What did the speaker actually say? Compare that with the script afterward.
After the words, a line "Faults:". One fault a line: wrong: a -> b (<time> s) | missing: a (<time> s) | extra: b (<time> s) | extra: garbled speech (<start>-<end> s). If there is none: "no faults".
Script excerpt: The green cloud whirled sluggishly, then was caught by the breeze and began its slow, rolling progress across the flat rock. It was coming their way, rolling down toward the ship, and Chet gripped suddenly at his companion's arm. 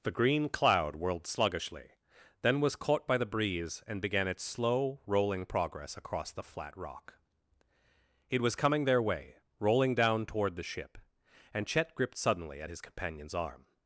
The green cloud whirled sluggishly, then was caught by the breeze and began its slow, rolling progress across the flat rock. It was coming their way, rolling down toward the ship, and Chet gripped suddenly at his companion's arm.
Faults:
no faults